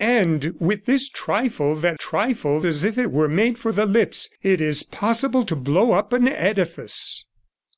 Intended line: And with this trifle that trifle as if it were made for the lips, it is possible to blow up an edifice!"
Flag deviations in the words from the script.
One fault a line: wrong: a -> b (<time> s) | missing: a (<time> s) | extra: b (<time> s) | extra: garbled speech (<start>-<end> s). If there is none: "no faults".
no faults